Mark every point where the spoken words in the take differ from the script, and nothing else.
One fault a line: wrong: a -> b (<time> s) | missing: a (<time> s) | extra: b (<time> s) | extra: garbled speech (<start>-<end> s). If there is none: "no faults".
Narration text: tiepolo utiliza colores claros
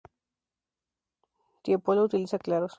missing: colores (2.4 s)